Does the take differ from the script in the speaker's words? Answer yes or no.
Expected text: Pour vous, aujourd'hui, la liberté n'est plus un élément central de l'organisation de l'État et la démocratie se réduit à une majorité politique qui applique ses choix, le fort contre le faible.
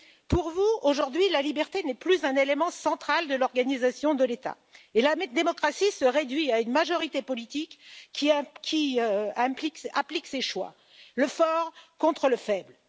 no